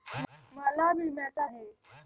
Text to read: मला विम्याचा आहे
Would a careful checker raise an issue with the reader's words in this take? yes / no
no